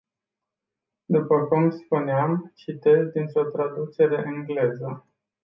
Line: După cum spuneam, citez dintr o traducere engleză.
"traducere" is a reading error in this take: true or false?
false